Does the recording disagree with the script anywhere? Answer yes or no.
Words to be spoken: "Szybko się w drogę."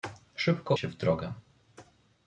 no